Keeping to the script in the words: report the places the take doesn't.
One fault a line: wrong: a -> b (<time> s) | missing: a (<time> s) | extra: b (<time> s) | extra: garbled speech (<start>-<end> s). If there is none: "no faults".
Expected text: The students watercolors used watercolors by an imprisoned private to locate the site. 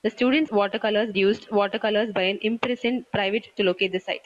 no faults